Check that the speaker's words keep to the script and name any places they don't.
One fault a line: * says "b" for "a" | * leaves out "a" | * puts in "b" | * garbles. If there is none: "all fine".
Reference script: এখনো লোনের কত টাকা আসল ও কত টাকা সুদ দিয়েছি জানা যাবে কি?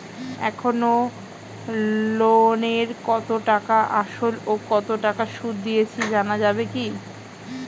all fine